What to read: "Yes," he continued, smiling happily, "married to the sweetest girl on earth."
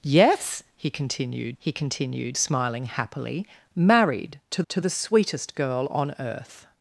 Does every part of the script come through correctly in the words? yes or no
no